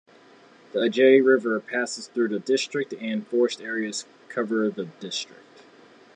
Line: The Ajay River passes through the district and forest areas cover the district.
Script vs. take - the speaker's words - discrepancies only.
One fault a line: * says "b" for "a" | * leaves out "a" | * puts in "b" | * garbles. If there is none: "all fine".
all fine